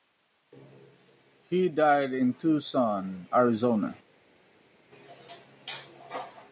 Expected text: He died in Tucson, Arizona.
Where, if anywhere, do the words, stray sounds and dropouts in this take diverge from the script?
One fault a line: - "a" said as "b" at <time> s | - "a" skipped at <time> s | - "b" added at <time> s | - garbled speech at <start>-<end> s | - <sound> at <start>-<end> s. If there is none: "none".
none